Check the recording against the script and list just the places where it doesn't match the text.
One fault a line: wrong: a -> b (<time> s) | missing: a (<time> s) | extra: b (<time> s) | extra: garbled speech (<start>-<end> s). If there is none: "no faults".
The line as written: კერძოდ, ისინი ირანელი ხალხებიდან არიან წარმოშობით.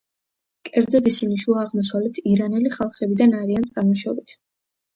extra: შუა აღმოსავლეთ (1.4 s)